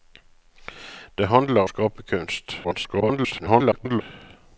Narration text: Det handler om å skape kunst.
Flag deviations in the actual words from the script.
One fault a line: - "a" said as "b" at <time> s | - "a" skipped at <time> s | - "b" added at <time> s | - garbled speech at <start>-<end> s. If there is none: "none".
- "om" skipped at 1.7 s
- garbled speech at 2.6-4.0 s